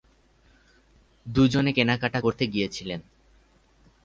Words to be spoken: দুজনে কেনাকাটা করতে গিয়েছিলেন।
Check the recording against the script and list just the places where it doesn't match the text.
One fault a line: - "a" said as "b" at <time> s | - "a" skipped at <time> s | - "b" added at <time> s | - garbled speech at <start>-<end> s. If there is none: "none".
none